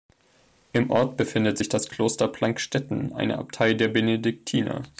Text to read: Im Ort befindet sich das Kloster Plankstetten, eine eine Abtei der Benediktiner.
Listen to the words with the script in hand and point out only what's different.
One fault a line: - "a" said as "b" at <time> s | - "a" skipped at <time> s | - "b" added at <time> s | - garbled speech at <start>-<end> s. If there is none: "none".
- "eine" skipped at 3.4 s